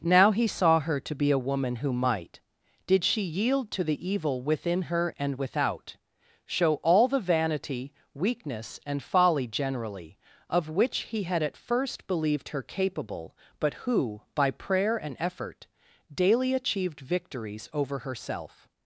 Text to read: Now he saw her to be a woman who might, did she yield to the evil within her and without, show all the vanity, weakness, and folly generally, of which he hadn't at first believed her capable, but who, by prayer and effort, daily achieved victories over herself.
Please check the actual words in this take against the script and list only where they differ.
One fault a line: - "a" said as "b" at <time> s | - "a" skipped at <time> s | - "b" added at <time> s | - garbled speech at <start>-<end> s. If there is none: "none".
- "hadn't" said as "had" at 11.2 s